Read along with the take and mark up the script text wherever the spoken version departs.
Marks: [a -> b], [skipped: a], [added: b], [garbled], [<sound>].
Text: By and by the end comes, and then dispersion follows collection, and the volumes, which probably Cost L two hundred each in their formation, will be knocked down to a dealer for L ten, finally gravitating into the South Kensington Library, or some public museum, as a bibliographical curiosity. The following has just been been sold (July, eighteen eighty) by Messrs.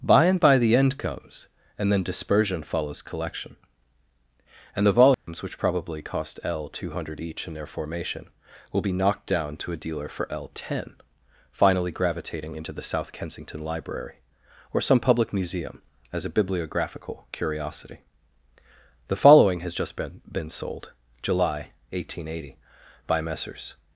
By and by the end comes, and then dispersion follows collection, and the volumes, [dropout] which probably Cost L two hundred each in their formation, will be knocked down to a dealer for L ten, finally gravitating into the South Kensington Library, or some public museum, as a bibliographical curiosity. The following has just been been sold (July, eighteen eighty) by Messrs.